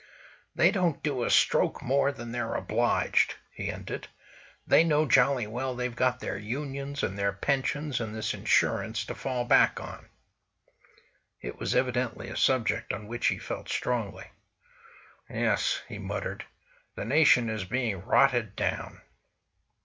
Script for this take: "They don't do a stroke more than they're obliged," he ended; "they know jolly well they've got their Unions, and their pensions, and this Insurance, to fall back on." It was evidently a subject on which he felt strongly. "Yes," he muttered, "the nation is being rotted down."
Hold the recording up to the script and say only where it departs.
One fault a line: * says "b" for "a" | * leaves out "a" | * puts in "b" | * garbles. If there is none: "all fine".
all fine